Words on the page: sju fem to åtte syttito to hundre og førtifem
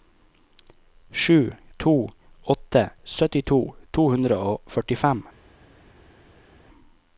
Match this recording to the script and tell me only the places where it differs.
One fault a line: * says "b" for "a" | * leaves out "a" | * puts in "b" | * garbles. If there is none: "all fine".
* leaves out "fem"